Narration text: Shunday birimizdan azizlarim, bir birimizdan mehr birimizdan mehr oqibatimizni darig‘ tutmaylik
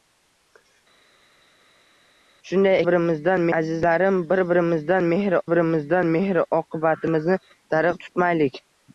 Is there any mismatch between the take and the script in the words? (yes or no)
no